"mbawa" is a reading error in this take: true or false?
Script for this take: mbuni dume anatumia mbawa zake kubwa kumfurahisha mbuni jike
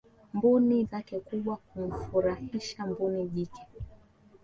true